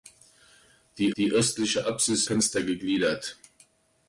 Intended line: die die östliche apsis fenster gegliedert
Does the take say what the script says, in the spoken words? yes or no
yes